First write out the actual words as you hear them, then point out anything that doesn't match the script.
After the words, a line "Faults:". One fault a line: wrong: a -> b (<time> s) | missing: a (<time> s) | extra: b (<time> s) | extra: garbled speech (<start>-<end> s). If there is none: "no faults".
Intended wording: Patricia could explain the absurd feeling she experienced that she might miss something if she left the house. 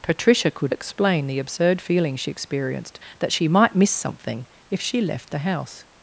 Patricia could explain the absurd feeling she experienced that she might miss something if she left the house.
Faults:
no faults